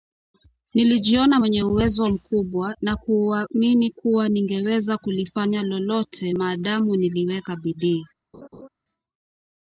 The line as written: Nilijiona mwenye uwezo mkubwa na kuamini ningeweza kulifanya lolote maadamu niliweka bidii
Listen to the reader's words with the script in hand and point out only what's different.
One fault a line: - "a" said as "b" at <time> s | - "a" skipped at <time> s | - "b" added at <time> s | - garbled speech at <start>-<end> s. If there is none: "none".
- "kuwa" added at 3.9 s